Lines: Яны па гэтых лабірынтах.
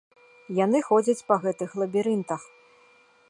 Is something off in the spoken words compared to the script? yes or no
yes